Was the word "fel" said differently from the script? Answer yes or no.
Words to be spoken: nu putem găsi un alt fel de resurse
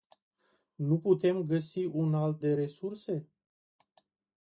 yes